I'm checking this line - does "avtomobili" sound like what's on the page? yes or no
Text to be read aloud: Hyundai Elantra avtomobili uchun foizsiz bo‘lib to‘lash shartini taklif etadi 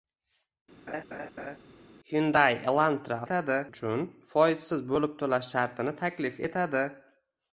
no